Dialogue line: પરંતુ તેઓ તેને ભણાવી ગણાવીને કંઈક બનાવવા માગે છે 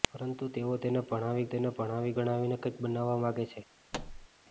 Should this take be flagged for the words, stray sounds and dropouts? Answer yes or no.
yes